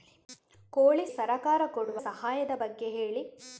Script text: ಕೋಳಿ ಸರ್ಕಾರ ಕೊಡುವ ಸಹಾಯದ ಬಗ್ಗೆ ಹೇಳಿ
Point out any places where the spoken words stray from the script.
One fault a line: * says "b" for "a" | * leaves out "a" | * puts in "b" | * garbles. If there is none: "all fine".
all fine